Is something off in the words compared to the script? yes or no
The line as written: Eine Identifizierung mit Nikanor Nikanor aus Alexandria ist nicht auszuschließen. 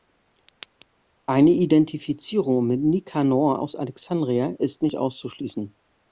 yes